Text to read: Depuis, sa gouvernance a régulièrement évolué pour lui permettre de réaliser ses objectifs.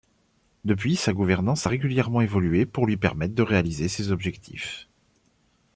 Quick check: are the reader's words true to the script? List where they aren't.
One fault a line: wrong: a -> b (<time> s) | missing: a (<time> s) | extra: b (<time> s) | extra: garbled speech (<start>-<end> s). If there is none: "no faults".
no faults